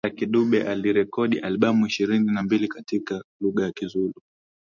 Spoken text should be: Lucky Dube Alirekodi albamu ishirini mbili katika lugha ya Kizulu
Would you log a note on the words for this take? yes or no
yes